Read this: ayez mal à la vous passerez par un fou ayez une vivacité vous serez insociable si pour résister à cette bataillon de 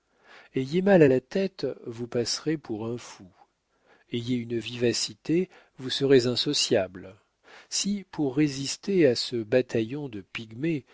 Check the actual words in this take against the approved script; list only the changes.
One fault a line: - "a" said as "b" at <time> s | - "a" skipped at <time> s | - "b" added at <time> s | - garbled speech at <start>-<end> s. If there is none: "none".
- "tête" added at 1.2 s
- "par" said as "pour" at 2.6 s
- "cette" said as "ce" at 9.1 s